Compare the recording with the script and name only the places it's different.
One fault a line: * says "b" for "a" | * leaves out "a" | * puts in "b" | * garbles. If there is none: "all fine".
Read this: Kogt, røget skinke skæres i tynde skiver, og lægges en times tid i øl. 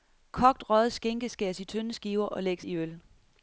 * leaves out "en times tid"